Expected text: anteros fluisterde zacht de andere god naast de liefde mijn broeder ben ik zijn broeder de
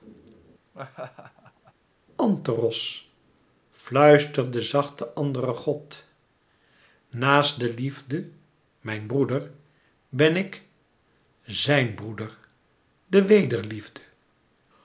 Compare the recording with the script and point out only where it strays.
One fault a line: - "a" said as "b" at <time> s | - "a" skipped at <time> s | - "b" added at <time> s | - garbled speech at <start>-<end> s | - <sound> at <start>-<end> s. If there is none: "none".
- laugh at 0.7-1.7 s